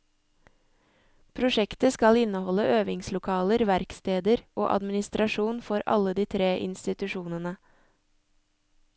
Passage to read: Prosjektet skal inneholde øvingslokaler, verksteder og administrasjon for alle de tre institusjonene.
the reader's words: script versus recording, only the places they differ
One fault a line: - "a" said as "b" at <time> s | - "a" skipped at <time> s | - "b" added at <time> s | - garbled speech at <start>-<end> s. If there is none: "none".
none